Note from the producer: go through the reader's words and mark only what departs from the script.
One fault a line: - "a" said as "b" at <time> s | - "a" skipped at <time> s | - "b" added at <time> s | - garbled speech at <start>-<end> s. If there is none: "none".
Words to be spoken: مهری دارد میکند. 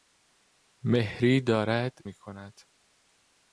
none